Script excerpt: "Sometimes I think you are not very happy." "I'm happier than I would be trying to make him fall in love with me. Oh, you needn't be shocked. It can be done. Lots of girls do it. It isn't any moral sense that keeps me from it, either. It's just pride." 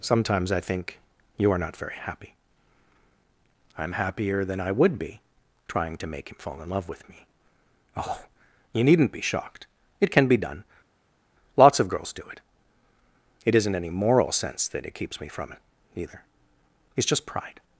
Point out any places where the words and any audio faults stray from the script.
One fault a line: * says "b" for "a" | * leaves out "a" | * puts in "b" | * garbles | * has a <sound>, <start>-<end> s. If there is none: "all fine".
* puts in "it"